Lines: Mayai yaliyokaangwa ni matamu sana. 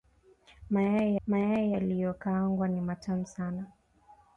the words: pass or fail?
fail